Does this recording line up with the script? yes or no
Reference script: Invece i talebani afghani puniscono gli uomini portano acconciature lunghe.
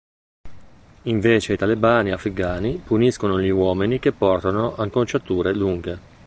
no